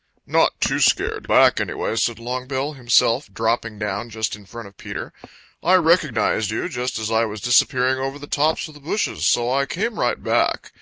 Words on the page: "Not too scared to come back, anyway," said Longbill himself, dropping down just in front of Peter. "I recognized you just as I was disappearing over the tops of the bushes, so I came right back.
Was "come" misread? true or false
true